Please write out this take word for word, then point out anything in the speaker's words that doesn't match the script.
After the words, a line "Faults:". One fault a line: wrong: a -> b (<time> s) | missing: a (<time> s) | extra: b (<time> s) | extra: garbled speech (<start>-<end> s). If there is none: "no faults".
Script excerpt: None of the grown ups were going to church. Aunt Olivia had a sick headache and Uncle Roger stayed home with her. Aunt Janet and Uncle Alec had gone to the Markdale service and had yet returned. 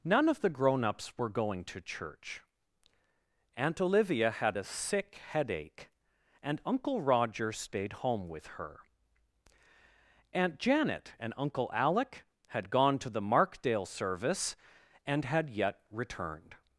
None of the grown ups were going to church. Aunt Olivia had a sick headache and Uncle Roger stayed home with her. Aunt Janet and Uncle Alec had gone to the Markdale service and had yet returned.
Faults:
no faults